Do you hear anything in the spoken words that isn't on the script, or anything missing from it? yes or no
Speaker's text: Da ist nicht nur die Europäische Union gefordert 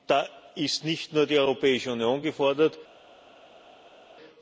no